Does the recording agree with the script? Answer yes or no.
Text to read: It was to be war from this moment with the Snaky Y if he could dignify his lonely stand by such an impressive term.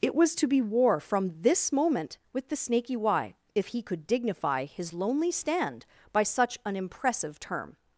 yes